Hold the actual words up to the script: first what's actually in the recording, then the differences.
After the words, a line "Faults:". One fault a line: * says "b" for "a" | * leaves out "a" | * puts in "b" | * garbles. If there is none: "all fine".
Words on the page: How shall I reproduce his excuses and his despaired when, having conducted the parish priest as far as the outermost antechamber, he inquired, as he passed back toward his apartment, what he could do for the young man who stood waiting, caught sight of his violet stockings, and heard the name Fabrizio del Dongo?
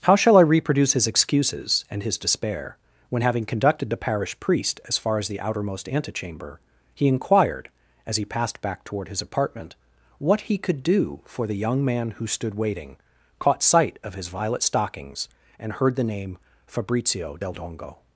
How shall I reproduce his excuses and his despair when, having conducted the parish priest as far as the outermost antechamber, he inquired, as he passed back toward his apartment, what he could do for the young man who stood waiting, caught sight of his violet stockings, and heard the name Fabrizio del Dongo?
Faults:
* says "despair" for "despaired"